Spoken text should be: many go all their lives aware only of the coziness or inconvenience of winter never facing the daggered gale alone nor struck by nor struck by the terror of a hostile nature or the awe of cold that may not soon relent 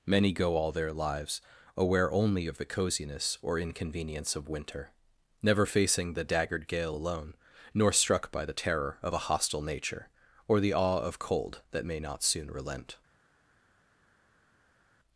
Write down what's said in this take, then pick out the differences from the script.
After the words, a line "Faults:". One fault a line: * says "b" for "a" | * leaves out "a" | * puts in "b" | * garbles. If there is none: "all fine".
many go all their lives aware only of the coziness or inconvenience of winter never facing the daggered gale alone nor struck by the terror of a hostile nature or the awe of cold that may not soon relent
Faults:
* leaves out "nor struck by"